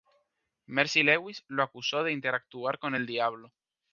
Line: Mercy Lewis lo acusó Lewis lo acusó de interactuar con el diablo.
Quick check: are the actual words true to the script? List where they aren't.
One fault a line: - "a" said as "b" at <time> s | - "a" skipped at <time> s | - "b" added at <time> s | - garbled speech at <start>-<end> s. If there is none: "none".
- "Lewis lo acusó" skipped at 2.0 s